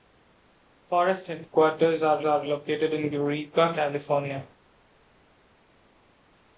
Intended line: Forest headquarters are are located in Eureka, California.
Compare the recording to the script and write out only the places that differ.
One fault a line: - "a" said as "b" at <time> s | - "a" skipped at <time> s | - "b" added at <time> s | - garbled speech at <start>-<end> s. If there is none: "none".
none